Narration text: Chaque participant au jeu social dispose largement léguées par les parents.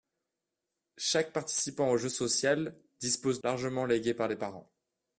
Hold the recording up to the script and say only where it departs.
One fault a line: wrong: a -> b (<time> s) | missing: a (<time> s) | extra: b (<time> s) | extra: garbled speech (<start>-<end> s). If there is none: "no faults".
no faults